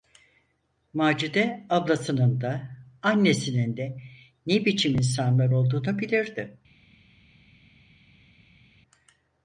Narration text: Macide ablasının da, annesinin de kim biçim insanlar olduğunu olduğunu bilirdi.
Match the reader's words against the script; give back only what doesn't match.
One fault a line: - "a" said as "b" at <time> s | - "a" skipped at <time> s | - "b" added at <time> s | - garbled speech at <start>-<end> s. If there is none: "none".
- "kim" said as "ne" at 4.5 s
- "olduğunu" skipped at 6.0 s